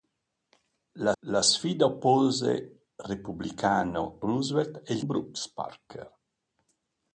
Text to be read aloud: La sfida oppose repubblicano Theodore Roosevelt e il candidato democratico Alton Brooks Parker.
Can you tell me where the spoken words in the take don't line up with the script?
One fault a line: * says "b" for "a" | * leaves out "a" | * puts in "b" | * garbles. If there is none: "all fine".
* puts in "la"
* leaves out "Theodore"
* leaves out "candidato democratico Alton"